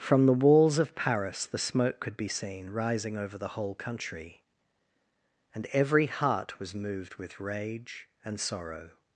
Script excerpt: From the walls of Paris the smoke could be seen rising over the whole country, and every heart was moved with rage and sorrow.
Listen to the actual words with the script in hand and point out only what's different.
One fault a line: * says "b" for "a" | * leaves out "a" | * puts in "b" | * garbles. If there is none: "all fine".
all fine